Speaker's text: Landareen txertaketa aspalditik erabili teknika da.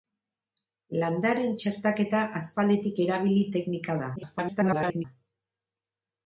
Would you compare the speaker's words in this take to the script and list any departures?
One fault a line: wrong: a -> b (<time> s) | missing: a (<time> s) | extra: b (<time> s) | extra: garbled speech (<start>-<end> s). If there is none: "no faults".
extra: garbled speech (4.2-5.0 s)